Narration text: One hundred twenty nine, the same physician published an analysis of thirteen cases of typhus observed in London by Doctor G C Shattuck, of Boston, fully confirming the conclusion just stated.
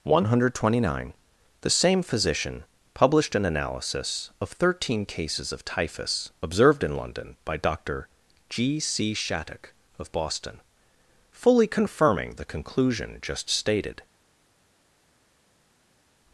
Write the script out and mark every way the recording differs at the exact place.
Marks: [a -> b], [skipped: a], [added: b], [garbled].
One hundred twenty nine, the same physician published an analysis of thirteen cases of typhus observed in London by Doctor G C Shattuck, of Boston, fully confirming the conclusion just stated.